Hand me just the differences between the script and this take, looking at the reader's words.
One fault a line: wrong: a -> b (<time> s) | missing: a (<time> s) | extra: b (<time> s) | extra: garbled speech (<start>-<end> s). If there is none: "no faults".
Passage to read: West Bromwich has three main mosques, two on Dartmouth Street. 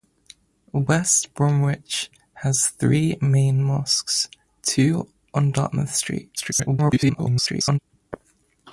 extra: garbled speech (6.4-7.8 s)